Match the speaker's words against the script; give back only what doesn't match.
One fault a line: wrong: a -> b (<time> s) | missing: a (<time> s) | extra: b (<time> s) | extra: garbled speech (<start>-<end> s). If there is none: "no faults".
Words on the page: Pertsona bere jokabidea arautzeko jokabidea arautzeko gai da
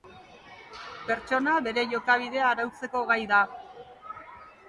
missing: jokabidea arautzeko (3.0 s)